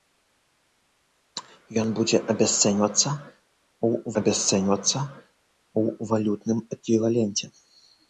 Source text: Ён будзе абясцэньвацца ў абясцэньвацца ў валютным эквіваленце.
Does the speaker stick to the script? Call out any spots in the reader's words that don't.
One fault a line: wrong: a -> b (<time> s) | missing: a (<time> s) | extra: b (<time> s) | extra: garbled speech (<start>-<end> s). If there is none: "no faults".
no faults